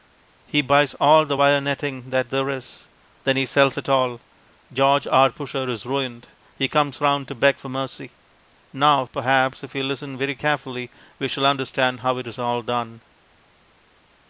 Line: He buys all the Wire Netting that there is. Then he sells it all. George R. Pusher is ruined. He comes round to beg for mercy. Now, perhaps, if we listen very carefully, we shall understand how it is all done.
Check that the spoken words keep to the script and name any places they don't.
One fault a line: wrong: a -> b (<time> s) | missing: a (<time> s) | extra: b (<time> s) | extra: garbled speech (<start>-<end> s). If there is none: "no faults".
no faults